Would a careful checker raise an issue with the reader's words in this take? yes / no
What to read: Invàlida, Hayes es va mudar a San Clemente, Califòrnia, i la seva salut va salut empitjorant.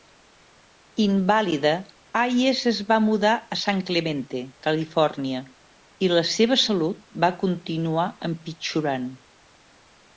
yes